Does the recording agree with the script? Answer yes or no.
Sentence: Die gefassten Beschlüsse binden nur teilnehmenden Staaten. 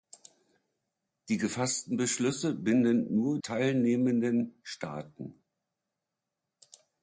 yes